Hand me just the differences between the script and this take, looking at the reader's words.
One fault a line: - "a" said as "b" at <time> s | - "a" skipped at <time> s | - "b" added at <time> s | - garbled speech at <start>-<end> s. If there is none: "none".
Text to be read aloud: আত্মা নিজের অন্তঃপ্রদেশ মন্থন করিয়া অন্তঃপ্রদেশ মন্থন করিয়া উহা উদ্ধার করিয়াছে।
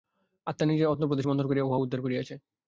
- "অন্তঃপ্রদেশ মন্থন করিয়া" skipped at 1.7 s